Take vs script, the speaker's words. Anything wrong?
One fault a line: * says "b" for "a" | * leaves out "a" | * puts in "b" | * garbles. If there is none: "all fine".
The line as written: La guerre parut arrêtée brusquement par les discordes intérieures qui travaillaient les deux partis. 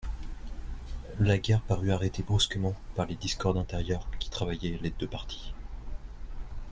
all fine